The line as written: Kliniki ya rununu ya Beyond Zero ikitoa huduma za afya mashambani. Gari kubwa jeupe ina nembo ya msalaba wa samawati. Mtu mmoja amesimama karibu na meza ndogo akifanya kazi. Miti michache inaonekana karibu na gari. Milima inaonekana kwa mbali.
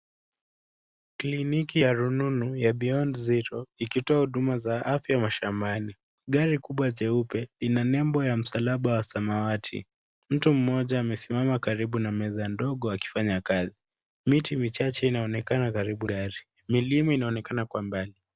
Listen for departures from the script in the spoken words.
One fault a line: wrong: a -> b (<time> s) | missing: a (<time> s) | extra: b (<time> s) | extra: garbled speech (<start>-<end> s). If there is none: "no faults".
missing: na (16.1 s)